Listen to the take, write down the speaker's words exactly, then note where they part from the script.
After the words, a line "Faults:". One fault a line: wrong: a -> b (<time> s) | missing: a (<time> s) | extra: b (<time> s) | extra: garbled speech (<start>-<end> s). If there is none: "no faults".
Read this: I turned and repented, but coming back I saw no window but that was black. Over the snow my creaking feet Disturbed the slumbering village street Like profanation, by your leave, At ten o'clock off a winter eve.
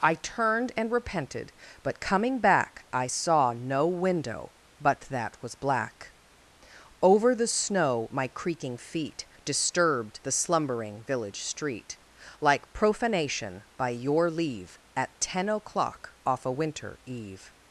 I turned and repented, but coming back I saw no window but that was black. Over the snow my creaking feet Disturbed the slumbering village street Like profanation, by your leave, At ten o'clock off a winter eve.
Faults:
no faults